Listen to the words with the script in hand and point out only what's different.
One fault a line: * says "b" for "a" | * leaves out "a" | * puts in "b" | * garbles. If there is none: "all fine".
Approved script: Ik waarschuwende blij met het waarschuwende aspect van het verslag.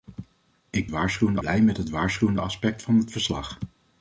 all fine